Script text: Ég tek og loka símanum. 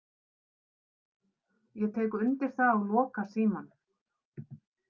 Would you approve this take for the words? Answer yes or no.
no